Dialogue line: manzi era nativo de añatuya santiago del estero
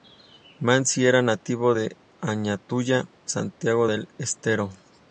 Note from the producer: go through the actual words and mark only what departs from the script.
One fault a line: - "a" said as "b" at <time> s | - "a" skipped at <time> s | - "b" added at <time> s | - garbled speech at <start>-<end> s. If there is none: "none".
none